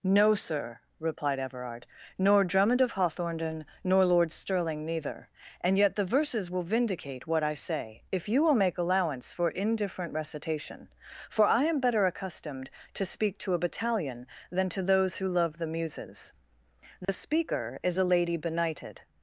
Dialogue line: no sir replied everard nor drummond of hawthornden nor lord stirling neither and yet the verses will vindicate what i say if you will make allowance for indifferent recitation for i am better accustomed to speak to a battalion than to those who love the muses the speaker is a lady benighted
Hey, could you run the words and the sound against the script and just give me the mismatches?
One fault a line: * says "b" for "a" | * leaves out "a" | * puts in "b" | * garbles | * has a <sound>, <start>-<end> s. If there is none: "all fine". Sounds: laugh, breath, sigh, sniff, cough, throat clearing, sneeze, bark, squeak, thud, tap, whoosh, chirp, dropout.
* has a dropout, 17.0-17.1 s